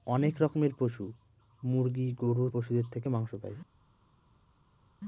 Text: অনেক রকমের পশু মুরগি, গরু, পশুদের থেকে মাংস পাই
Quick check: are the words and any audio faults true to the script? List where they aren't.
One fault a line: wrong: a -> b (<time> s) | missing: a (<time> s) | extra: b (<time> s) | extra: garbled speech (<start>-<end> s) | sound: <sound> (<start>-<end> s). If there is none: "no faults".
no faults